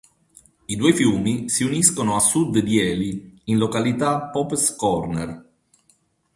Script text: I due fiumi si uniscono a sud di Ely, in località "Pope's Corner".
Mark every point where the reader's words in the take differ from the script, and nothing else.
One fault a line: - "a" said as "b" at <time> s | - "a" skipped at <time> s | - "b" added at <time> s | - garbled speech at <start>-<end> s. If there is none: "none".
none